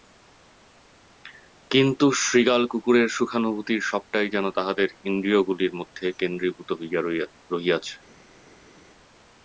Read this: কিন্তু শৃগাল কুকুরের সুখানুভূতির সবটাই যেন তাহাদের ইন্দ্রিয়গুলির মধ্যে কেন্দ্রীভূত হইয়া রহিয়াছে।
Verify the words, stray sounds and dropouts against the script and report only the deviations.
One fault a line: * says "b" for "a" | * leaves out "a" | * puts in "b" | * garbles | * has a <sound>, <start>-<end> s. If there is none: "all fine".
all fine